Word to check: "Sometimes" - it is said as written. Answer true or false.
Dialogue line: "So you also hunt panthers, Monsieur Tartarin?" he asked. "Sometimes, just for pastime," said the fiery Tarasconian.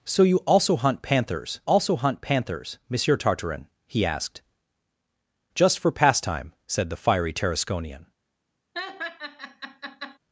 false